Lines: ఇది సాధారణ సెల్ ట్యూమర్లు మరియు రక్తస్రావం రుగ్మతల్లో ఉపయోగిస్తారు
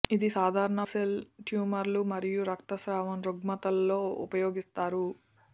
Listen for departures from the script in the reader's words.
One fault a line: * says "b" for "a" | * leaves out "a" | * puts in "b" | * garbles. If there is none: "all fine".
all fine